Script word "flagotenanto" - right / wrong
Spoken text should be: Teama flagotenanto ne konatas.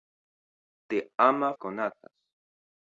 wrong